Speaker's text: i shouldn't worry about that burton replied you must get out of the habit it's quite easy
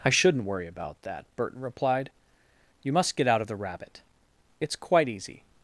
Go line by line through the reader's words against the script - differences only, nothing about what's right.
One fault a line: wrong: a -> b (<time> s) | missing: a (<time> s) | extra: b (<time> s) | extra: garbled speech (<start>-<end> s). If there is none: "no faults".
wrong: habit -> rabbit (3.6 s)